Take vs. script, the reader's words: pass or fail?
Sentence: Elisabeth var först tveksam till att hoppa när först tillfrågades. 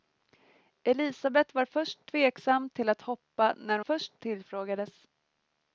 pass